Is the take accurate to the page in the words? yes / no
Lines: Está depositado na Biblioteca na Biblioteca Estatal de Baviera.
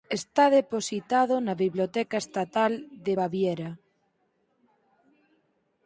no